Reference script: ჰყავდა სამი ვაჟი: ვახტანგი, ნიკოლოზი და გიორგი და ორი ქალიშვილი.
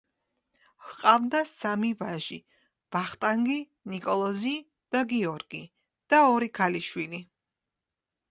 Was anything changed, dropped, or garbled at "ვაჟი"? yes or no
no